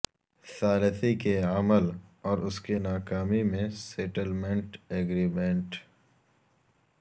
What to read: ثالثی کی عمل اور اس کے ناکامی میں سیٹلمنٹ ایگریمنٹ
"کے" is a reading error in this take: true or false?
true